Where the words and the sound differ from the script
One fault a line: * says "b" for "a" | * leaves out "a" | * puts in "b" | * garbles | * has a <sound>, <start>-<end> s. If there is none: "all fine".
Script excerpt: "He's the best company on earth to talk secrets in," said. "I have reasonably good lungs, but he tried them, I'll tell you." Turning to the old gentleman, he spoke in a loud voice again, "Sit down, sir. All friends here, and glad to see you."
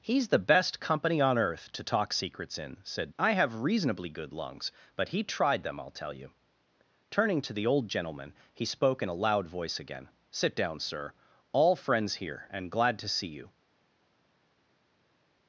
all fine